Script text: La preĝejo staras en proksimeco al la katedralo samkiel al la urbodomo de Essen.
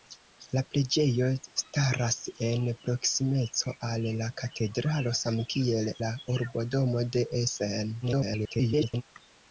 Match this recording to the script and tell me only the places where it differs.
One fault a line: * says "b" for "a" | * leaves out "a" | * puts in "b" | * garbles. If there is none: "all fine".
* leaves out "al"
* garbles